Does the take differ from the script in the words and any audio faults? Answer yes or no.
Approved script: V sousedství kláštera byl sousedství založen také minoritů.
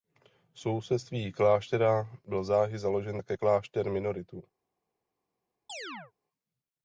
yes